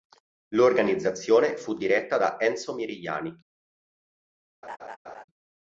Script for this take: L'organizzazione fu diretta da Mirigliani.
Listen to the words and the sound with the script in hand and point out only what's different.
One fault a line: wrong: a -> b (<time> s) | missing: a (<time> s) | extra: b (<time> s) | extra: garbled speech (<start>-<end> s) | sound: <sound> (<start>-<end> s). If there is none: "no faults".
extra: Enzo (2.4 s)
sound: laugh (4.6-5.2 s)